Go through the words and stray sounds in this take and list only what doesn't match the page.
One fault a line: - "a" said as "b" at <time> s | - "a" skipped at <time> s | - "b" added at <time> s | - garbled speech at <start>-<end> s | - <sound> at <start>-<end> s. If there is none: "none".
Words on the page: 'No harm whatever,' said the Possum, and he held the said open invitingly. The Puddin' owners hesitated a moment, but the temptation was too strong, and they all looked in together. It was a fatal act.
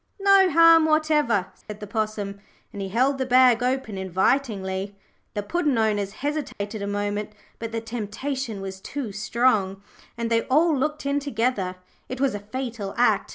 - dropout at 1.6-1.7 s
- "said" said as "bag" at 3.3 s
- dropout at 6.5-6.6 s